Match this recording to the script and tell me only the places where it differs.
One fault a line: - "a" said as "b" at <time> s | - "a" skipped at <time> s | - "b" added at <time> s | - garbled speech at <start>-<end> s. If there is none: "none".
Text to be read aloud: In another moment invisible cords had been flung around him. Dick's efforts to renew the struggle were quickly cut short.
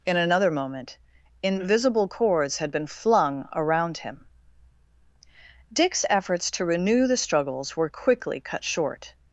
- "struggle" said as "struggles" at 7.2 s